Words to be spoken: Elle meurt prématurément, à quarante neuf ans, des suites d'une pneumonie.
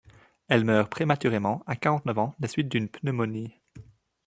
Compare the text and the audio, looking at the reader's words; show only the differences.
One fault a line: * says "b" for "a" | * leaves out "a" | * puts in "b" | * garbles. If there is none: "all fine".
all fine